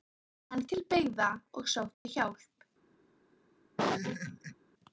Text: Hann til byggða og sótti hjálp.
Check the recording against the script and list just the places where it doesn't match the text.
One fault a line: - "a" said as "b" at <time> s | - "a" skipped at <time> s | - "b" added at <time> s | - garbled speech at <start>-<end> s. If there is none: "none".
none